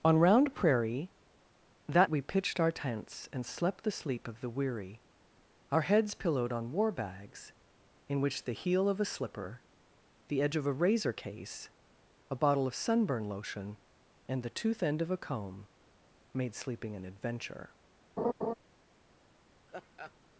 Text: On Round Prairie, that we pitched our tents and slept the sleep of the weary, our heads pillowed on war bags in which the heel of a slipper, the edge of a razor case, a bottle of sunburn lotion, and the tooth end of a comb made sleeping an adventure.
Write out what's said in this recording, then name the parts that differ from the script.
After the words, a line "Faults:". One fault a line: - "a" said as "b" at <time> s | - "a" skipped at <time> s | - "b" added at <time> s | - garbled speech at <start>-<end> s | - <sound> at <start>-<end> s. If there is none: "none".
On Round Prairie, that we pitched our tents and slept the sleep of the weary, our heads pillowed on war bags in which the heel of a slipper, the edge of a razor case, a bottle of sunburn lotion, and the tooth end of a comb made sleeping an adventure.
Faults:
- laugh at 18.2-18.5 s
- laugh at 19.7-20.1 s